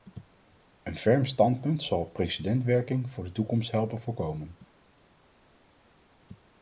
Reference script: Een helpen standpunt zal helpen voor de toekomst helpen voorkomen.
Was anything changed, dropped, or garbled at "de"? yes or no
no